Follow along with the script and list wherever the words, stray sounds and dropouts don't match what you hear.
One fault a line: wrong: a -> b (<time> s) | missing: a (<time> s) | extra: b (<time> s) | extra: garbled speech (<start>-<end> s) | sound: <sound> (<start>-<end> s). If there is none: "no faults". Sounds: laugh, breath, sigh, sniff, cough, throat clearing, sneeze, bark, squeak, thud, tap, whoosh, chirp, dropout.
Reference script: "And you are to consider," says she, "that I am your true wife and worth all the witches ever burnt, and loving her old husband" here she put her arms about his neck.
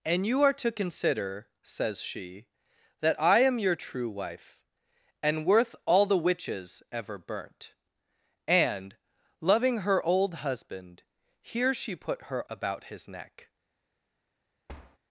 missing: arms (12.5 s)
sound: thud (14.7-15.0 s)